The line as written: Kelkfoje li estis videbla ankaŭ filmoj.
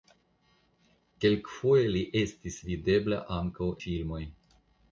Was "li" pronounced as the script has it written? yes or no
yes